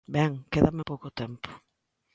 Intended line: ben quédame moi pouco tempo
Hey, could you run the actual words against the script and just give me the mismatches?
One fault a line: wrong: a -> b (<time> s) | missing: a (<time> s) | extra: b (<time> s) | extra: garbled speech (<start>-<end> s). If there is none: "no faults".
missing: moi (0.8 s)